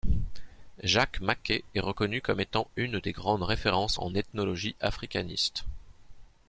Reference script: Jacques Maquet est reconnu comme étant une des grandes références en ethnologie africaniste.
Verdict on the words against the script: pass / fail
pass